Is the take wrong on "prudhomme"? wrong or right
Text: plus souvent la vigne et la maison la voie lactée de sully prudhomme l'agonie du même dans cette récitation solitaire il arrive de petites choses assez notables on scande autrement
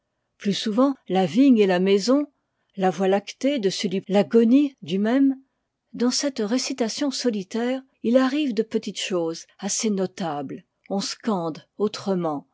wrong